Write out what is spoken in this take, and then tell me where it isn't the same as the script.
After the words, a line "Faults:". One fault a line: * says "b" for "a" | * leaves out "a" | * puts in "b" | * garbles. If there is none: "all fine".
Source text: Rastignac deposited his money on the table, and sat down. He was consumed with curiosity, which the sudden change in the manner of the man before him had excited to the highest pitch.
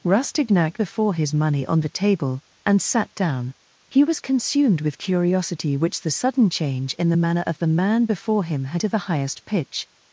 Rastignac before his money on the table, and sat down. He was consumed with curiosity, which the sudden change in the manner of the man before him had to the highest pitch.
Faults:
* says "before" for "deposited"
* leaves out "excited"